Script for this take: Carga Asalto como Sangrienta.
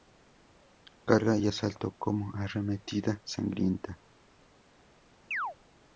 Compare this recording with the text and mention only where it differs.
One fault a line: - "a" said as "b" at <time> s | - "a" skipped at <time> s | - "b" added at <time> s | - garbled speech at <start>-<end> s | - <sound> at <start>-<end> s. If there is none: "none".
- "y" added at 1.4 s
- "Arremetida" added at 2.3 s
- chirp at 5.3-5.6 s